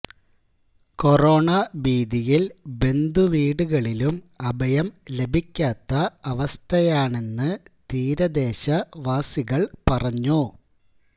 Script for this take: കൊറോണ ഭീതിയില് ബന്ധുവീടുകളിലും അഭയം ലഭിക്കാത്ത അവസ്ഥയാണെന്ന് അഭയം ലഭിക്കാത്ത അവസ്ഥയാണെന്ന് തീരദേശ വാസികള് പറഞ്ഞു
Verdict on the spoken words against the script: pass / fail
fail